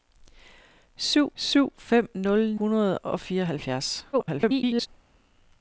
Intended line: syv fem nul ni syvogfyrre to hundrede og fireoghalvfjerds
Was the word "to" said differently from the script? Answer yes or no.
yes